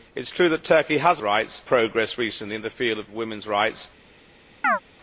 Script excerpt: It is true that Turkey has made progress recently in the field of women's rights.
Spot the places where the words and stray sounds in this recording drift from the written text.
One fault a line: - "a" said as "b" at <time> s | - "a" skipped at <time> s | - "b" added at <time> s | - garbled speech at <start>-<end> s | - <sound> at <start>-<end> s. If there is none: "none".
- "made" said as "rights" at 1.2 s
- chirp at 4.6-4.8 s